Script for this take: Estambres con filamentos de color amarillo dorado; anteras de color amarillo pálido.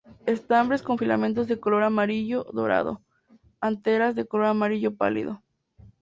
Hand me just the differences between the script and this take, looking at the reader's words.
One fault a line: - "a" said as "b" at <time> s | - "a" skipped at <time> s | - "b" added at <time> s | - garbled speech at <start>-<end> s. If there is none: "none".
none